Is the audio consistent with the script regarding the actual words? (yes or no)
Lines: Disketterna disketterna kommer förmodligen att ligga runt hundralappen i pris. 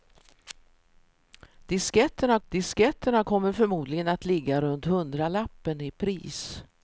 yes